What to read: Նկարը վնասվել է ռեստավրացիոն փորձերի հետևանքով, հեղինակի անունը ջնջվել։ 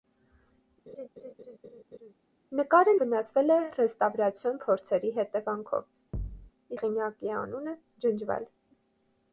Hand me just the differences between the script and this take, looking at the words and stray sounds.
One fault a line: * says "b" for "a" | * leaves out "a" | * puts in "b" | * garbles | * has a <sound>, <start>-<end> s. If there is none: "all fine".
* has a laugh, 0.9-2.1 s
* has a thud, 6.1-6.5 s